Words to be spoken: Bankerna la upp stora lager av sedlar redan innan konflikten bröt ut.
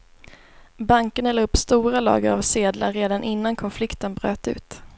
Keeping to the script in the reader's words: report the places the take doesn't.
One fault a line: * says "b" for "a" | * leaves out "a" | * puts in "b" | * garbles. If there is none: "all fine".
all fine